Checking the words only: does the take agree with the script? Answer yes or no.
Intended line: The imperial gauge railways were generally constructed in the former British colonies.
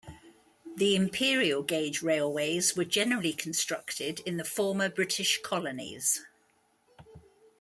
yes